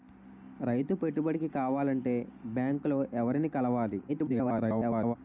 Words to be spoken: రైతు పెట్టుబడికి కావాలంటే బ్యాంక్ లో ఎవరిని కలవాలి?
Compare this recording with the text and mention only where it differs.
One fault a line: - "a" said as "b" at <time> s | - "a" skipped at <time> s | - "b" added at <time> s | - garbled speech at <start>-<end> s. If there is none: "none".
- garbled speech at 4.1-5.2 s